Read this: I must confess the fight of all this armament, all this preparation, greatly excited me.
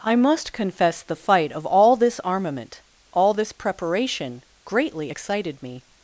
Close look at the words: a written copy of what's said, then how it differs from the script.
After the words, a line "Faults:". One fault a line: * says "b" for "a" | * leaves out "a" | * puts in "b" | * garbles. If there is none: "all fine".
I must confess the fight of all this armament, all this preparation, greatly excited me.
Faults:
all fine